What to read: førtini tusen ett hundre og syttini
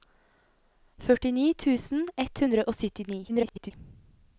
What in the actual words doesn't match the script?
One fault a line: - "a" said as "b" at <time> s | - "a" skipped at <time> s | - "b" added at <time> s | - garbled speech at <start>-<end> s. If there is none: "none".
- garbled speech at 3.3-3.7 s